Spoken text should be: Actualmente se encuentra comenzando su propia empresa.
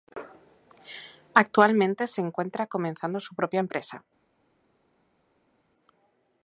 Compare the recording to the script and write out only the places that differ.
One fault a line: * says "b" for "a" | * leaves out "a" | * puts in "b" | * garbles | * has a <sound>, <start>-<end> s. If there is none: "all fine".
all fine